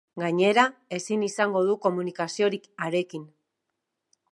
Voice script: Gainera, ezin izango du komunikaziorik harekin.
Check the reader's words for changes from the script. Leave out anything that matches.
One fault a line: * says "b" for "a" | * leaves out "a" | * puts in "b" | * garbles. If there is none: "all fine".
all fine